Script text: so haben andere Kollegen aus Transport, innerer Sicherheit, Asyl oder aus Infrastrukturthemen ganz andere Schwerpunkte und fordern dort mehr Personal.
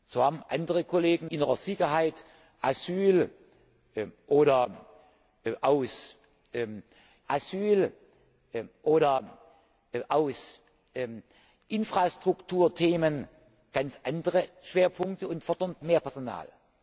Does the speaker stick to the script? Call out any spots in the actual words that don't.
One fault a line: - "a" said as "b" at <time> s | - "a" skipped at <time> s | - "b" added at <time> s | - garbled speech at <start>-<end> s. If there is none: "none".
- "aus Transport" skipped at 1.3 s
- "Asyl oder aus" added at 7.3 s
- "dort" skipped at 15.7 s